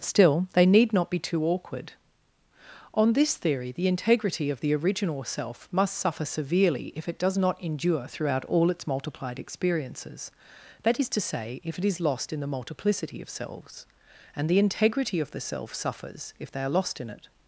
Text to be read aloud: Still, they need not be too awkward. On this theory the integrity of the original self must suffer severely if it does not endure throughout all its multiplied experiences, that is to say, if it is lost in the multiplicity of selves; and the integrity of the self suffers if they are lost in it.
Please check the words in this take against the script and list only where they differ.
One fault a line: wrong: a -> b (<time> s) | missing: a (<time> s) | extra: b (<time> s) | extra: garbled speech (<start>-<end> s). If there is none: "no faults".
no faults